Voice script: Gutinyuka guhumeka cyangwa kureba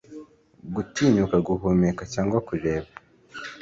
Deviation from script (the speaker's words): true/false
false